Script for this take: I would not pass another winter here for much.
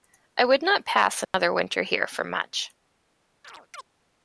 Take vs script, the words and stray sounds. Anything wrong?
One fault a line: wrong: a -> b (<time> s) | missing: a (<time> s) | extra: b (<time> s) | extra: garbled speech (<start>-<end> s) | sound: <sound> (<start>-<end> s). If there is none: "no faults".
sound: dropout (1.2-1.3 s)
sound: chirp (3.4-3.8 s)